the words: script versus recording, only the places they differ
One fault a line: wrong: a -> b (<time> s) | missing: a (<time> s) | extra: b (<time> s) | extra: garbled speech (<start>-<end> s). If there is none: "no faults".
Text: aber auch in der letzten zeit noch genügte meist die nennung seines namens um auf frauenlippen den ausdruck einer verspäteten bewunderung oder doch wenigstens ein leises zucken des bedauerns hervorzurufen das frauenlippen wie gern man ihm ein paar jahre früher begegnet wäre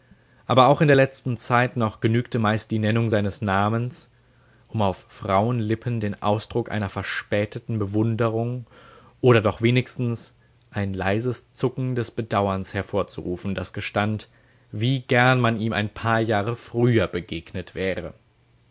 wrong: frauenlippen -> gestand (13.7 s)